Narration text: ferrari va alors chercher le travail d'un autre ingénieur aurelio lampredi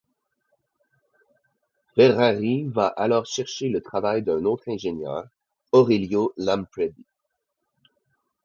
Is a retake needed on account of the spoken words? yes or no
no